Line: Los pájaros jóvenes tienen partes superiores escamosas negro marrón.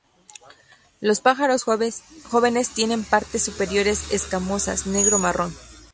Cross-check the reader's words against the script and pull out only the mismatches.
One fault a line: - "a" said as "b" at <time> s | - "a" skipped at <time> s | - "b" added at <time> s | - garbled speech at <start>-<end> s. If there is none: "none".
none